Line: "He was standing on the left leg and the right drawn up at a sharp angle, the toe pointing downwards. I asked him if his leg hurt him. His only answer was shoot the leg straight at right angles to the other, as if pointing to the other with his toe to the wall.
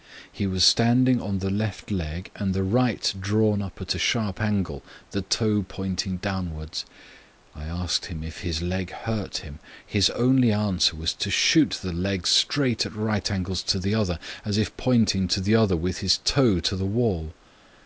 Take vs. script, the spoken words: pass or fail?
fail